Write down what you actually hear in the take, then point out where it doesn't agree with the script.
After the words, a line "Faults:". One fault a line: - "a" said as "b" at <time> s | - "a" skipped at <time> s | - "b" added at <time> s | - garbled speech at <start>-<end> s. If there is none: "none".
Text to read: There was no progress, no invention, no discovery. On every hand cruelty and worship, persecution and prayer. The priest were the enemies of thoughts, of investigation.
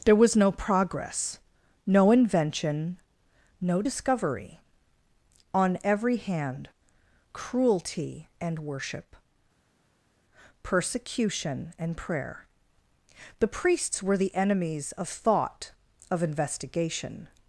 There was no progress, no invention, no discovery. On every hand cruelty and worship, persecution and prayer. The priests were the enemies of thought, of investigation.
Faults:
- "priest" said as "priests" at 13.5 s
- "thoughts" said as "thought" at 15.1 s